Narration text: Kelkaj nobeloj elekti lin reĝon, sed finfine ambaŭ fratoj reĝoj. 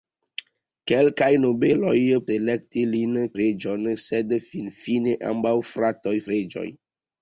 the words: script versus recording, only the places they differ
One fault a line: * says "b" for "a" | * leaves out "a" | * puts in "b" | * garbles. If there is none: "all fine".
all fine